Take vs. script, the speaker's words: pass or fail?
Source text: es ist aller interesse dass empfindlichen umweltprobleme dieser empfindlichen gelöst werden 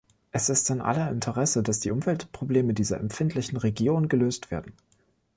fail